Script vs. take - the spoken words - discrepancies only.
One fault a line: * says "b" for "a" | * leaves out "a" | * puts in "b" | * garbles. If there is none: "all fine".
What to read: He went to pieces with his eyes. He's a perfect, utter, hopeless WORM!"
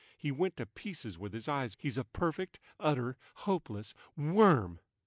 all fine